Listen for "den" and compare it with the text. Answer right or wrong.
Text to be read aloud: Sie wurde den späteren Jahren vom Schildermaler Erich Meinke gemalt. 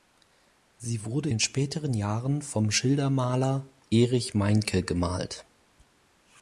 right